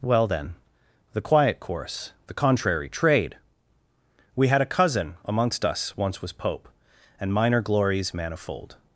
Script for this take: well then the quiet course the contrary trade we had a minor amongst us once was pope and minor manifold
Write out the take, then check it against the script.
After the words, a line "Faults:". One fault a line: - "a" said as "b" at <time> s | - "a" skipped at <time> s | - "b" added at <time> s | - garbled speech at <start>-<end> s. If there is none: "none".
well then the quiet course the contrary trade we had a cousin amongst us once was pope and minor glories manifold
Faults:
- "minor" said as "cousin" at 4.7 s
- "glories" added at 7.6 s